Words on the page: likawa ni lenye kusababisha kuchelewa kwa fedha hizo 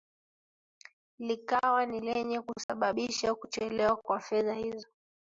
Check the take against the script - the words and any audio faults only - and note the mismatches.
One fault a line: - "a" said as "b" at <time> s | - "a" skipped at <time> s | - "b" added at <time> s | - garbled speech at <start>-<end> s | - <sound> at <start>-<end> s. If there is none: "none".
- dropout at 2.6-2.7 s